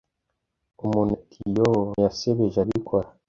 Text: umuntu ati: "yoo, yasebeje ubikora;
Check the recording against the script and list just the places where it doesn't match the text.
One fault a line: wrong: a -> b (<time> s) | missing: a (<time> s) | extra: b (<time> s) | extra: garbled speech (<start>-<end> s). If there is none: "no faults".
no faults